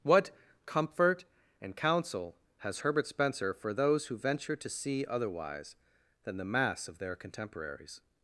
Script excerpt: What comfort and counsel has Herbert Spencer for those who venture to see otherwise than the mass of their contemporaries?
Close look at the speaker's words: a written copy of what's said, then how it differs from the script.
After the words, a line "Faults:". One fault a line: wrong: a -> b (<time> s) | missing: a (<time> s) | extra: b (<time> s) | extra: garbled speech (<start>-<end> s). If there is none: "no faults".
What comfort and counsel has Herbert Spencer for those who venture to see otherwise than the mass of their contemporaries?
Faults:
no faults